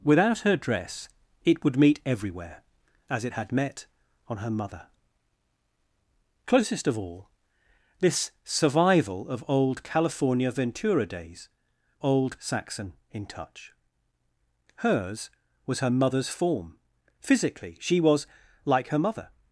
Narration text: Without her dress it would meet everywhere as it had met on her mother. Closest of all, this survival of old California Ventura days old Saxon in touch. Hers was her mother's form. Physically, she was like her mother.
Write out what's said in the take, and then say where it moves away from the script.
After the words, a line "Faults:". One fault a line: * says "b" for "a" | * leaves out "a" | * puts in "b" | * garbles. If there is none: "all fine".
Without her dress it would meet everywhere as it had met on her mother. Closest of all, this survival of old California Ventura days old Saxon in touch. Hers was her mother's form. Physically, she was like her mother.
Faults:
all fine